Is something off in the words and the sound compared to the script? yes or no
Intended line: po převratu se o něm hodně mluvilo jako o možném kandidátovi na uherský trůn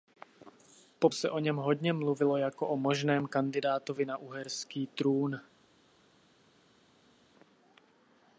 yes